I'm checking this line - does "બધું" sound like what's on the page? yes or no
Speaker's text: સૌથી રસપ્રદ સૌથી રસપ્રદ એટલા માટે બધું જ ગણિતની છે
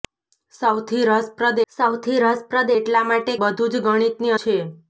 yes